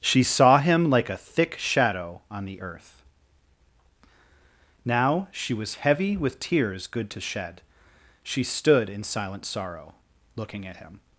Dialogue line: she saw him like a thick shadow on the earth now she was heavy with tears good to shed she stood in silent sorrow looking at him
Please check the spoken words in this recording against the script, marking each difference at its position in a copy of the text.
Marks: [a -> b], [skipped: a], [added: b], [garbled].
she saw him like a thick shadow on the earth now she was heavy with tears good to shed she stood in silent sorrow looking at him